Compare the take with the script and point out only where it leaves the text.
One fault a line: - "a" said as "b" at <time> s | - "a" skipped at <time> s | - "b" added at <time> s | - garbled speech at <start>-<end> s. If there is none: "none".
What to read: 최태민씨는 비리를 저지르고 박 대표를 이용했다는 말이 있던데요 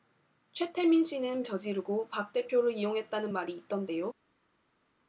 - "비리를" skipped at 1.4 s